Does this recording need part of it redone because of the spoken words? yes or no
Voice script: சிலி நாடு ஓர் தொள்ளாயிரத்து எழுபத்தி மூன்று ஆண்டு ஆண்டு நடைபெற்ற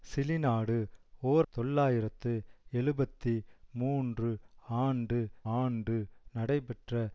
no